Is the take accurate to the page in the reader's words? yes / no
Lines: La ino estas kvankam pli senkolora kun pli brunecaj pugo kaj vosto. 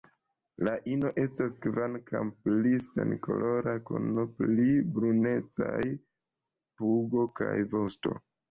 yes